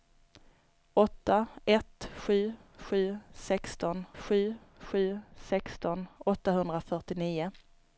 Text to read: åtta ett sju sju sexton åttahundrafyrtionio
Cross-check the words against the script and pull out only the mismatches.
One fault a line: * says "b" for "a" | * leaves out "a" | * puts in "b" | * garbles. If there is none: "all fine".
* puts in "sju sju sexton"